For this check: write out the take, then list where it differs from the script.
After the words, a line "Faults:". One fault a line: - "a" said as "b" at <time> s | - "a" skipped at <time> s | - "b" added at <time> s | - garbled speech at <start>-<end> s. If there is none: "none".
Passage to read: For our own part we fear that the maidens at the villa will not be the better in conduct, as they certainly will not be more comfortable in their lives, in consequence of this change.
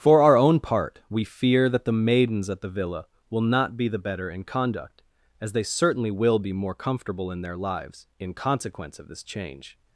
For our own part we fear that the maidens at the villa will not be the better in conduct, as they certainly will be more comfortable in their lives, in consequence of this change.
Faults:
- "not" skipped at 6.4 s